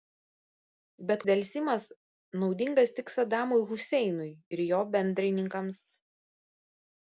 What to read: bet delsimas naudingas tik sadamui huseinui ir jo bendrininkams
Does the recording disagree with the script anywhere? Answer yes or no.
no